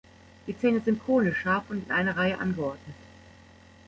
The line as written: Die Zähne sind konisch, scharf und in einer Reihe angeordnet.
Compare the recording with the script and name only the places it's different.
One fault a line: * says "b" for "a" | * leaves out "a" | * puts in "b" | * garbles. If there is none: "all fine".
all fine